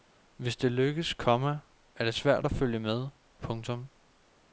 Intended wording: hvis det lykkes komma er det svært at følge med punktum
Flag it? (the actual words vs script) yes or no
no